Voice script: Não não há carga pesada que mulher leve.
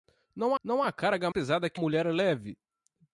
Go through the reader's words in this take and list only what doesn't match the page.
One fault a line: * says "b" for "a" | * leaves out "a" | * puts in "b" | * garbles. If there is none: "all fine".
all fine